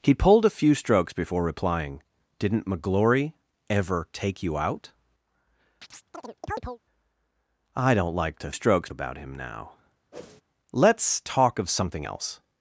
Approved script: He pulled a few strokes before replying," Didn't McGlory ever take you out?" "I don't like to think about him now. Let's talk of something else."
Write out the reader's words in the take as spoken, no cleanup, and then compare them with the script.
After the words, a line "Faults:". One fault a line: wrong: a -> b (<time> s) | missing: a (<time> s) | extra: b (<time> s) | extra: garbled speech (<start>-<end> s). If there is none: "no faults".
He pulled a few strokes before replying," Didn't McGlory ever take you out?" "I don't like to strokes about him now. Let's talk of something else."
Faults:
wrong: think -> strokes (8.5 s)